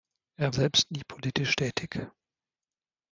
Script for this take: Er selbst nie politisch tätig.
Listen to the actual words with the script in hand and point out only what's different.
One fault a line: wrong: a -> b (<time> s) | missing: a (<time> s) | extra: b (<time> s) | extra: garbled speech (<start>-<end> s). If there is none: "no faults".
no faults